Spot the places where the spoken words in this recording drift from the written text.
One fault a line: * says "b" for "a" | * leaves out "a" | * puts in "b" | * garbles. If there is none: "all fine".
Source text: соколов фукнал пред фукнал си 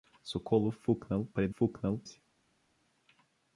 all fine